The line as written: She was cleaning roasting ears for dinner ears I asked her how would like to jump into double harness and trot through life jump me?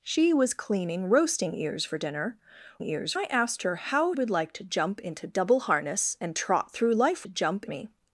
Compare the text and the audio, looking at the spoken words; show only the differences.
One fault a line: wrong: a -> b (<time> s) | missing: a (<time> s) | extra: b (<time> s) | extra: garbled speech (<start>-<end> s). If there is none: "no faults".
no faults